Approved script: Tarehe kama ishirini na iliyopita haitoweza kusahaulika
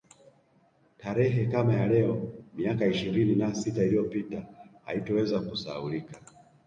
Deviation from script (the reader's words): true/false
true